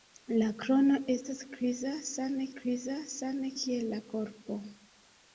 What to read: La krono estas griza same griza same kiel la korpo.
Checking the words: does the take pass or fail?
pass